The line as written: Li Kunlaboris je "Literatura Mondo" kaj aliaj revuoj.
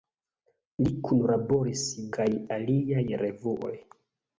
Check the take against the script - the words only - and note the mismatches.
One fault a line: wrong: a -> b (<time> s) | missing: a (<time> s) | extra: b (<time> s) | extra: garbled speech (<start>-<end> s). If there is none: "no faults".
missing: je Literatura Mondo (1.8 s)